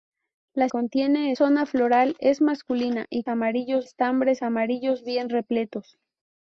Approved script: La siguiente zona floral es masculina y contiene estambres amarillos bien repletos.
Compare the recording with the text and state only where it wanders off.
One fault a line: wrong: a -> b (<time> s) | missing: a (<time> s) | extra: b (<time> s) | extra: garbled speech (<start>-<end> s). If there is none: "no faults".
wrong: siguiente -> contiene (0.7 s)
wrong: contiene -> amarillos (3.3 s)